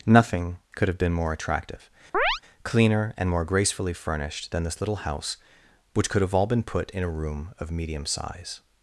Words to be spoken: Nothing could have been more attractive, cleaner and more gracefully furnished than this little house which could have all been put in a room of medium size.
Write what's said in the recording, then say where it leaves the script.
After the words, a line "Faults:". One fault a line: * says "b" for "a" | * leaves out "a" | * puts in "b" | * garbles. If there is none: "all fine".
Nothing could have been more attractive, cleaner and more gracefully furnished than this little house which could have all been put in a room of medium size.
Faults:
all fine